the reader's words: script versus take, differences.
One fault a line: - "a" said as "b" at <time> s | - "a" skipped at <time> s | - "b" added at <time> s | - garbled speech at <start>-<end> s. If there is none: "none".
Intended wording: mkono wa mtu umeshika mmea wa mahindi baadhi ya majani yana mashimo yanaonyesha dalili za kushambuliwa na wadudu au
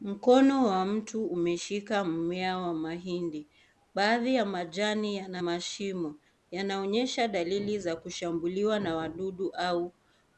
none